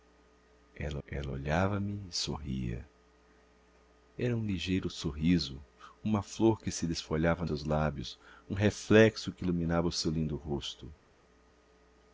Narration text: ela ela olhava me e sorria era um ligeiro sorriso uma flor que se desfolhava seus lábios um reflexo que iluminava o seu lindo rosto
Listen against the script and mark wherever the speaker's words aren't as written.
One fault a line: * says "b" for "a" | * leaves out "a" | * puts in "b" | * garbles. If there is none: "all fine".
all fine